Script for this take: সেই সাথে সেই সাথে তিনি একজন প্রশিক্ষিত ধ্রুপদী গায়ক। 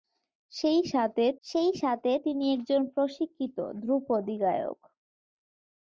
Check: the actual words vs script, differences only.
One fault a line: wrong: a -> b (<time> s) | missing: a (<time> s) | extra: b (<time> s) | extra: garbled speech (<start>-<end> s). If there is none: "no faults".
no faults